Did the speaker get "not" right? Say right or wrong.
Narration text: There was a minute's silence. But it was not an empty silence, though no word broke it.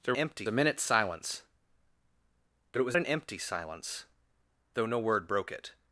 wrong